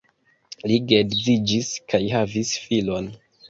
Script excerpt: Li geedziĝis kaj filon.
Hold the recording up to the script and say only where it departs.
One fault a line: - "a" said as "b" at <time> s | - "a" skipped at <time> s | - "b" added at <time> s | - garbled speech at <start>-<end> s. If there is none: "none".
- "havis" added at 2.1 s